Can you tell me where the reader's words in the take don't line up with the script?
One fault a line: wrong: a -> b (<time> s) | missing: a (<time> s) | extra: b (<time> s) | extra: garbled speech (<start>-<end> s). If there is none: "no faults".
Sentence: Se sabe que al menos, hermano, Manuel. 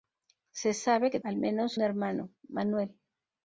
no faults